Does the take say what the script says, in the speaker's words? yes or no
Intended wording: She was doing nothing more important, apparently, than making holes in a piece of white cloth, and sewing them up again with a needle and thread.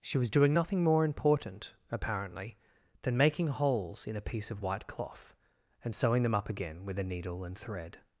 yes